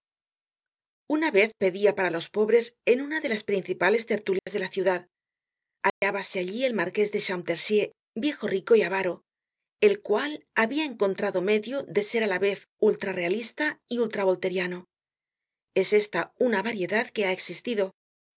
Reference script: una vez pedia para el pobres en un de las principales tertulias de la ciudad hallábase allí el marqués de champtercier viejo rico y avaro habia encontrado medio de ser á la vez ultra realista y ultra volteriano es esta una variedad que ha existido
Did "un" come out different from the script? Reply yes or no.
yes